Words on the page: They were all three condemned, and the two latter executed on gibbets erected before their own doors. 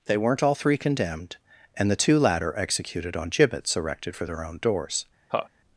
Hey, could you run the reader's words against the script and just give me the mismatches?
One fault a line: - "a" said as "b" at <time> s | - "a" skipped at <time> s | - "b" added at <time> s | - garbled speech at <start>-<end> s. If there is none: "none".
- "were" said as "weren't" at 0.2 s
- "before" said as "for" at 4.2 s